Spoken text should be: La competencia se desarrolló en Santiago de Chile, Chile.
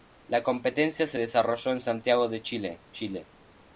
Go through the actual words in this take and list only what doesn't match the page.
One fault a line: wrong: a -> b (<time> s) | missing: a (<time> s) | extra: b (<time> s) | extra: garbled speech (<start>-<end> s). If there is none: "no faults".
no faults